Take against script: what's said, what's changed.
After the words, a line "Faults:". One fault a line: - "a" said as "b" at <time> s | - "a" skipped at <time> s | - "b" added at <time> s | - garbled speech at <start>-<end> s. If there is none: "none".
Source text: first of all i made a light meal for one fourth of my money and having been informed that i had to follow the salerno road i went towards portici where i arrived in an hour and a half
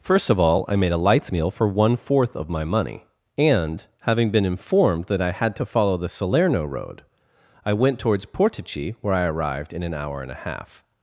first of all i made a lights meal for one fourth of my money and having been informed that i had to follow the salerno road i went towards portici where i arrived in an hour and a half
Faults:
- "light" said as "lights" at 1.0 s